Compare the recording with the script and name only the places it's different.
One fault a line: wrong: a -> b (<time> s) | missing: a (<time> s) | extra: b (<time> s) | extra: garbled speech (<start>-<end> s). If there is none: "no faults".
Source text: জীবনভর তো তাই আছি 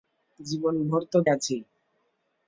missing: তাই (1.2 s)